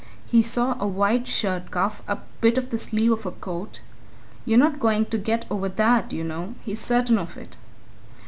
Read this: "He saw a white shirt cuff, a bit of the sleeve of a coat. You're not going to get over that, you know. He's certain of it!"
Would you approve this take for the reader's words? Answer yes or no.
yes